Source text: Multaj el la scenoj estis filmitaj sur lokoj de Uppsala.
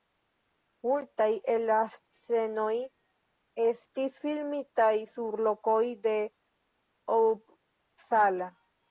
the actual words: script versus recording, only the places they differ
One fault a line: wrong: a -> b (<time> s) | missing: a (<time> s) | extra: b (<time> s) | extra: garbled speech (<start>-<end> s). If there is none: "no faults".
no faults